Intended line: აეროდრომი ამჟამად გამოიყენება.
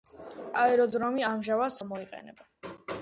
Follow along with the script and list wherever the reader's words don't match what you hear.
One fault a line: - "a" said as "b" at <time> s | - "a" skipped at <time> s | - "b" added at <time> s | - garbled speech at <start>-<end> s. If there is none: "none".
none